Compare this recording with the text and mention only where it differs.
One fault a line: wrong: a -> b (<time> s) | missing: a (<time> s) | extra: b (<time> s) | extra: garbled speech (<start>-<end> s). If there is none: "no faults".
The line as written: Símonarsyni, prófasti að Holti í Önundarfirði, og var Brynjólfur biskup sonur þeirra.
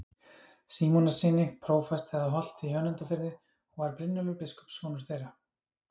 no faults